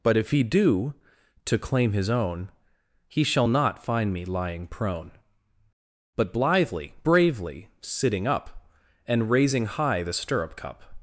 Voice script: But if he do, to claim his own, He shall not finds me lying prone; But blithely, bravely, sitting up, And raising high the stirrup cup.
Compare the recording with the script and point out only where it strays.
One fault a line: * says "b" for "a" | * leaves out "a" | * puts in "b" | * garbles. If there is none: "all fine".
* says "find" for "finds"